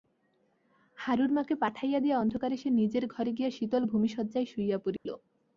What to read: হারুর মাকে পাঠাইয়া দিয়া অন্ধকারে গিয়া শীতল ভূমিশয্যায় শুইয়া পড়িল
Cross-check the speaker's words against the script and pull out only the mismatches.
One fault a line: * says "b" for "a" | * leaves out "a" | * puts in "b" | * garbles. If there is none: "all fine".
* puts in "সে নিজের ঘরে"